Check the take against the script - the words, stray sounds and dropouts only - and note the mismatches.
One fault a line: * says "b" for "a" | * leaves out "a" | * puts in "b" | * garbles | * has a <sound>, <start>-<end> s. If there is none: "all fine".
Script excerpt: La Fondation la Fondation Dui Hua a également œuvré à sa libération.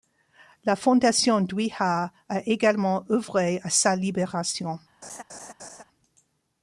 * leaves out "la Fondation"
* has a laugh, 5.0-5.8 s